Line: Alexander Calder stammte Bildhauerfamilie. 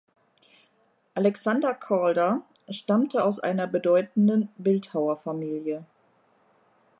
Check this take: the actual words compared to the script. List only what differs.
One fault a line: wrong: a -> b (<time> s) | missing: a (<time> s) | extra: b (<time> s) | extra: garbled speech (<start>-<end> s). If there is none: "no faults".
extra: aus einer bedeutenden (3.2 s)